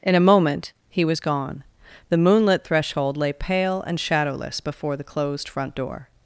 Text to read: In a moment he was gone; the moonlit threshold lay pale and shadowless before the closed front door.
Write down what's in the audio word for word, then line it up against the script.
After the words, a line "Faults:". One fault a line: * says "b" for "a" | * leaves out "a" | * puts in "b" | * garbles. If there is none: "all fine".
In a moment he was gone; the moonlit threshold lay pale and shadowless before the closed front door.
Faults:
all fine